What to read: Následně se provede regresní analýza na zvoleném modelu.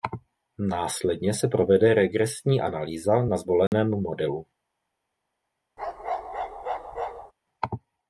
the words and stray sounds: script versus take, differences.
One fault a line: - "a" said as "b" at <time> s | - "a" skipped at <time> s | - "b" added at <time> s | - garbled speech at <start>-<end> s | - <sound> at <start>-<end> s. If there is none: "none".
- dropout at 3.7-3.7 s
- bark at 5.8-7.3 s